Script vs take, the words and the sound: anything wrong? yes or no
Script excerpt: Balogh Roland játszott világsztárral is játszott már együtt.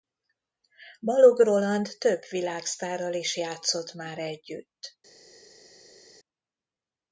yes